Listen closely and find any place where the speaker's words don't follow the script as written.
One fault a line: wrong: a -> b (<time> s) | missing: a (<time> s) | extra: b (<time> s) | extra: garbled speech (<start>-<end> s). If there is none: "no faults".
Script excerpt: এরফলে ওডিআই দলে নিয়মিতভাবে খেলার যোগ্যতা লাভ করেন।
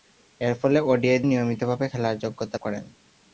missing: দলে (1.2 s)
missing: লাভ (2.6 s)